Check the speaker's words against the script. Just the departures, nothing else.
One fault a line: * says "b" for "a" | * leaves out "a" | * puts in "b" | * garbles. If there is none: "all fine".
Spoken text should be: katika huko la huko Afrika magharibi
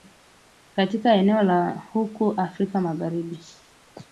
* says "eneo" for "huko"